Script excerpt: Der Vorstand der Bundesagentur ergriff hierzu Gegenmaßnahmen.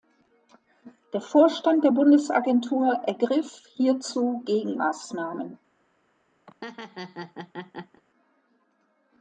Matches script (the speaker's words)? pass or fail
pass